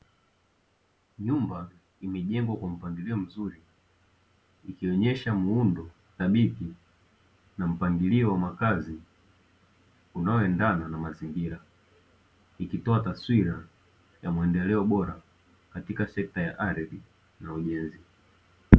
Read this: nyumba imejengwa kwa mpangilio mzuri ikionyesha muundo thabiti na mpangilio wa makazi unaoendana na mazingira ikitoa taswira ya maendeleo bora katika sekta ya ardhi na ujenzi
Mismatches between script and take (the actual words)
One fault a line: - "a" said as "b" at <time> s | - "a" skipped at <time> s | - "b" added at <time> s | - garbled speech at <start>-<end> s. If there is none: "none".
none